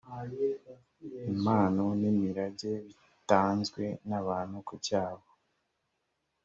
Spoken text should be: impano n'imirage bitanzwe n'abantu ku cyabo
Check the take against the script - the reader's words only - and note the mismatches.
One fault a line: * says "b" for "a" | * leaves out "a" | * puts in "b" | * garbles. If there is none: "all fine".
all fine